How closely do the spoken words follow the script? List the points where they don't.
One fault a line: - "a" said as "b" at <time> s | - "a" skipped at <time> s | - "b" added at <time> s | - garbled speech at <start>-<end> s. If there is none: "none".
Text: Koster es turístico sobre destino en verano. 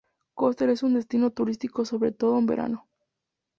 - "un destino" added at 0.8 s
- "destino" said as "todo" at 2.1 s